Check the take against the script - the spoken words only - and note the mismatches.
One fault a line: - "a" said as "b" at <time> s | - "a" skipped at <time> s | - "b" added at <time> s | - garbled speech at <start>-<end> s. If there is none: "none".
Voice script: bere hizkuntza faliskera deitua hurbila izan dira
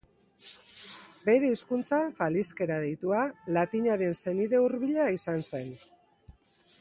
- "latinaren senide" added at 3.6 s
- "dira" said as "zen" at 5.5 s